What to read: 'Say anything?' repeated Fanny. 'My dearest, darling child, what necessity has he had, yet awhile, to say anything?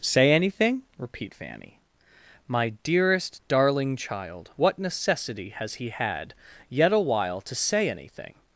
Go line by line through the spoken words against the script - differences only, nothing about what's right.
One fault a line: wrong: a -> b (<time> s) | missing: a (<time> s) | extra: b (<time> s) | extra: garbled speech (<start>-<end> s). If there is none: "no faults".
wrong: repeated -> repeat (1.0 s)